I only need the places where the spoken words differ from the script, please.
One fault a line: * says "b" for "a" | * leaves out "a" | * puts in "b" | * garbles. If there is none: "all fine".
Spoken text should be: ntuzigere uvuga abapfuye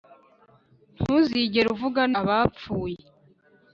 all fine